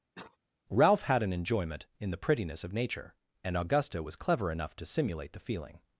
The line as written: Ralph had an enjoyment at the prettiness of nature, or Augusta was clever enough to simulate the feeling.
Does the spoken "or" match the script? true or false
false